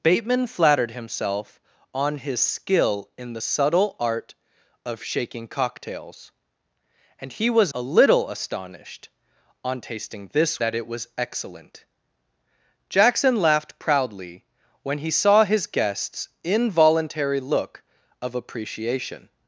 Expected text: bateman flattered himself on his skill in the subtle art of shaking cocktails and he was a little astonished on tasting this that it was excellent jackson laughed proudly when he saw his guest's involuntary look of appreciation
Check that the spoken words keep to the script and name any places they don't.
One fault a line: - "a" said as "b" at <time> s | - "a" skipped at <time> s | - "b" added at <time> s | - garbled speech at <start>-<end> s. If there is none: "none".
none